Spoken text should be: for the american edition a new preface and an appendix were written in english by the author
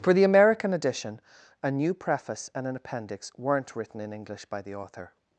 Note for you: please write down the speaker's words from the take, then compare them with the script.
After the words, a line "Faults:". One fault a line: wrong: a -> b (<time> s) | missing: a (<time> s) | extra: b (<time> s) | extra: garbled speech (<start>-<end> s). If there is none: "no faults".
for the american edition a new preface and an appendix weren't written in english by the author
Faults:
wrong: were -> weren't (3.4 s)